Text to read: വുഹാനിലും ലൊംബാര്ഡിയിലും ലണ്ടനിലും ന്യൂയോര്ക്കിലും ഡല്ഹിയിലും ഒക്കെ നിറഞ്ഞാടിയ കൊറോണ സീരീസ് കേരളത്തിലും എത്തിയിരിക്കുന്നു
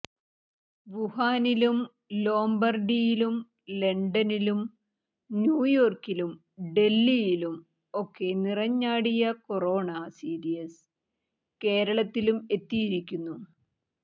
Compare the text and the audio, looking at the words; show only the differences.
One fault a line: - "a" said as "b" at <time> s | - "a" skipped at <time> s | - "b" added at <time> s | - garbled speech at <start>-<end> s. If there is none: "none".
none